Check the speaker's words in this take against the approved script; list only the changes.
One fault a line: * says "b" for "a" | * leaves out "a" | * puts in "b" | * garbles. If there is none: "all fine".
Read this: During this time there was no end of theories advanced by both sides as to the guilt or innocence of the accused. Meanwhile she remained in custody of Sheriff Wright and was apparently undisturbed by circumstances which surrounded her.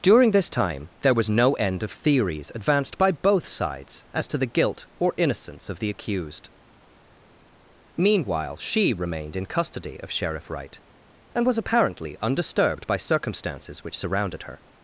all fine